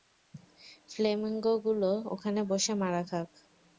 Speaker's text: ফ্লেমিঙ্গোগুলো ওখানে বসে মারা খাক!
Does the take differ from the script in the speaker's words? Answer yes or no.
no